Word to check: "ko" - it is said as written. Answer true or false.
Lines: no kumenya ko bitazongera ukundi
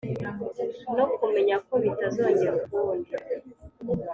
true